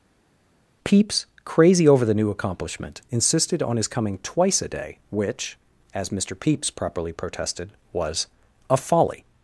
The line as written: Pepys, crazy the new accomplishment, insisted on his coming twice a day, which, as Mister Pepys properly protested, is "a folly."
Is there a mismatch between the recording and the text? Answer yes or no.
yes